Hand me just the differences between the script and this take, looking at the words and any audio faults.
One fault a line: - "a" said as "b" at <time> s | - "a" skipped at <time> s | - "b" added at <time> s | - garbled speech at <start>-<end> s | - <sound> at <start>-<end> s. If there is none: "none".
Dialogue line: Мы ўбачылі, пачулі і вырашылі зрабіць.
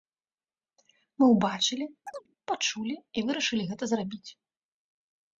- chirp at 2.1-2.3 s
- "гэта" added at 3.7 s